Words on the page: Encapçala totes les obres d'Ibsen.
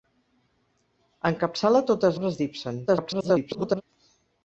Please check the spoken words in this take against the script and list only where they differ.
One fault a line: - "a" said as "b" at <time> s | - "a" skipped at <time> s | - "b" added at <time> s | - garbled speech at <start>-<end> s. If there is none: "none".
- "les" skipped at 2.2 s
- garbled speech at 2.9-3.8 s